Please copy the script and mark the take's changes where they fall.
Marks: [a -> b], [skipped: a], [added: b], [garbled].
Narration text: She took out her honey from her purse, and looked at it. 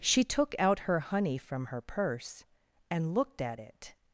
She took out her honey from her purse, and looked at it.